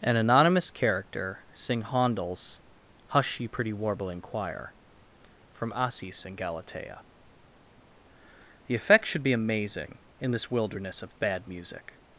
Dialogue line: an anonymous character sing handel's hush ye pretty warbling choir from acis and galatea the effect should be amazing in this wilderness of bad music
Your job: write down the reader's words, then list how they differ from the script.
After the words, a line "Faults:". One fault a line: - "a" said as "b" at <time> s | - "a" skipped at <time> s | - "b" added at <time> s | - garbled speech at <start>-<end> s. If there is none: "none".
an anonymous character sing handel's hush ye pretty warbling choir from acis and galatea the effect should be amazing in this wilderness of bad music
Faults:
none